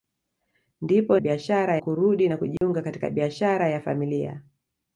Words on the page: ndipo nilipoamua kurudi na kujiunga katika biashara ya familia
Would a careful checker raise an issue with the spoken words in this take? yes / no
yes